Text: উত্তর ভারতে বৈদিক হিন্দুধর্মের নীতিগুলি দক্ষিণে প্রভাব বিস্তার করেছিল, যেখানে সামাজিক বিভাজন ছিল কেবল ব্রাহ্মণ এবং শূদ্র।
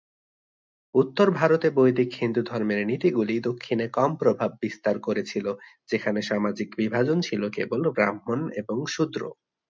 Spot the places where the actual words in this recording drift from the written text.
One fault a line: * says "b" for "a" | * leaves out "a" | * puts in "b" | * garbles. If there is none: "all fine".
* puts in "কম"